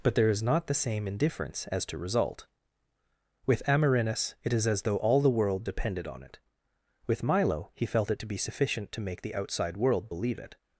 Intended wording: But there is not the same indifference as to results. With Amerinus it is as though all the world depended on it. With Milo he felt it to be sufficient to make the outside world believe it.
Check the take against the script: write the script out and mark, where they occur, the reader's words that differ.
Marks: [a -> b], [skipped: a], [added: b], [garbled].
But there is not the same indifference as to [results. -> result] With Amerinus it is as though all the world depended on it. With Milo he felt it to be sufficient to make the outside world believe it.